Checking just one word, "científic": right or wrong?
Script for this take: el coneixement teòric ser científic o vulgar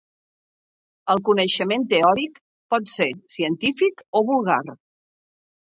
right